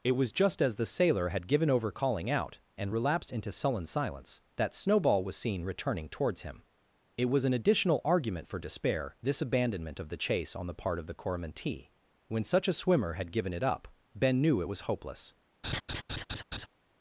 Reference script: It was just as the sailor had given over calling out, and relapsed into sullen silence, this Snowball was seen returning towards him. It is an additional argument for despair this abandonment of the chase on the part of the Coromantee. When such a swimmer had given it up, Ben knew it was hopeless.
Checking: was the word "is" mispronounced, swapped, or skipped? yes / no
yes